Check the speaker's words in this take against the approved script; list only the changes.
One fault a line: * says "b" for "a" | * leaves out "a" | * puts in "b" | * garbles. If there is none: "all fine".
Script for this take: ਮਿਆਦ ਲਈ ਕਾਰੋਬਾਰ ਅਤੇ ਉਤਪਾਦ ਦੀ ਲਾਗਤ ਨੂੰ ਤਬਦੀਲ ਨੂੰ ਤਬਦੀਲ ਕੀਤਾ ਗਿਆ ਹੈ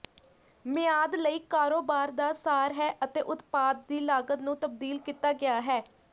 * puts in "ਦਾ ਸਾਰ ਹੈ"
* leaves out "ਨੂੰ ਤਬਦੀਲ"